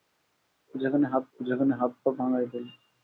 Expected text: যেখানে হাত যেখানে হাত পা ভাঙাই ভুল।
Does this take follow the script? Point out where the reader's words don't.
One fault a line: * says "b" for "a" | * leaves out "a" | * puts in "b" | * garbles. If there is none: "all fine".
all fine